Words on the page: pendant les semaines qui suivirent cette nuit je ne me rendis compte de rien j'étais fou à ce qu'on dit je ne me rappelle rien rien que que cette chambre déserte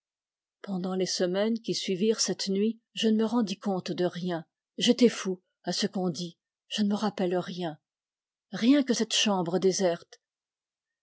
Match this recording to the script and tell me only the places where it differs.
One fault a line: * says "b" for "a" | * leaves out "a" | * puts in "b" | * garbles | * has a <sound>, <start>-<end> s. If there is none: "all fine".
* leaves out "que"